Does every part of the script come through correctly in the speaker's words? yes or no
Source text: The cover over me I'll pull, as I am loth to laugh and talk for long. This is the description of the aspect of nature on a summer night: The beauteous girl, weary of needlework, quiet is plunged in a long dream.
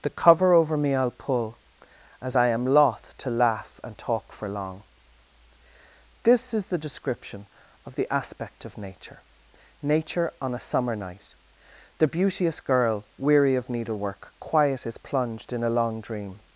no